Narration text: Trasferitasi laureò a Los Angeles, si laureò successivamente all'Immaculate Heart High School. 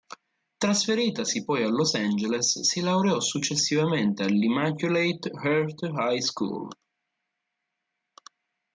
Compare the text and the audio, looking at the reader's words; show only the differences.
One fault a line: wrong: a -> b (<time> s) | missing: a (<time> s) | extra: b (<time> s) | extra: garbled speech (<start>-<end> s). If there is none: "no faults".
wrong: laureò -> poi (1.4 s)